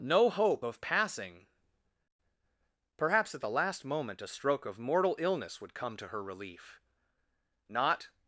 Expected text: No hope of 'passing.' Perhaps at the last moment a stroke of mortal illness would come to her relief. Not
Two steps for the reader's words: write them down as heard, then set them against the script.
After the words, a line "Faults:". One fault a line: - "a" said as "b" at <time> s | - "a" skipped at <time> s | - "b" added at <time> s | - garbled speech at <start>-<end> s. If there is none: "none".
No hope of 'passing.' Perhaps at the last moment a stroke of mortal illness would come to her relief. Not
Faults:
none